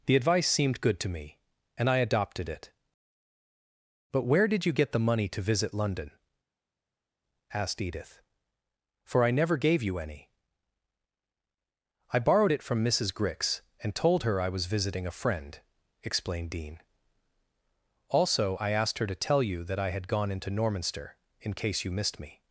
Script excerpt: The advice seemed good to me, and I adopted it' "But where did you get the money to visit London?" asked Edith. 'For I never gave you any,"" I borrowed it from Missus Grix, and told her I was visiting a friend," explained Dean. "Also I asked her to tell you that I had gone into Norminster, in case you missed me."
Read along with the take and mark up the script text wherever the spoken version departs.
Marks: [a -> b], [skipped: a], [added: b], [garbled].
The advice seemed good to me, and I adopted it' "But where did you get the money to visit London?" asked Edith. 'For I never gave you any,"" I borrowed it from Missus Grix, and told her I was visiting a friend," explained Dean. "Also I asked her to tell you that I had gone into Norminster, in case you missed me."